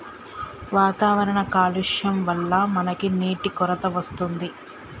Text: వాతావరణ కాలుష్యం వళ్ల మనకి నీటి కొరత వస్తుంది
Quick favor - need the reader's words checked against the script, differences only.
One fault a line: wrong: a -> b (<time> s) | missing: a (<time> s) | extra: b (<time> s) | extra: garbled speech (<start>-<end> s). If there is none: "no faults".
no faults